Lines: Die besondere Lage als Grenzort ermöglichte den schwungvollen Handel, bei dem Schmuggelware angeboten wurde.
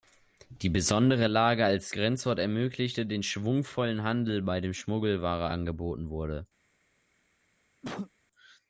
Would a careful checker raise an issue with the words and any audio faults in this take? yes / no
yes